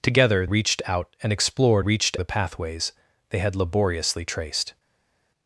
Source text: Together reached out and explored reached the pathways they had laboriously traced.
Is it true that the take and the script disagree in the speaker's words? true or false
false